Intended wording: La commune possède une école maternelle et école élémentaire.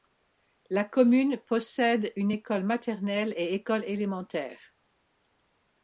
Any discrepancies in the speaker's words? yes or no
no